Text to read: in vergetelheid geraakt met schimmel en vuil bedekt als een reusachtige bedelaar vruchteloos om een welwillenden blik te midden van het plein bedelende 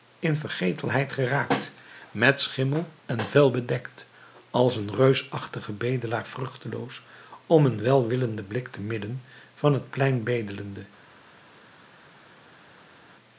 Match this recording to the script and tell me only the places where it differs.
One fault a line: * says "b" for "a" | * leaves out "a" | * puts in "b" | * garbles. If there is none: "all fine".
all fine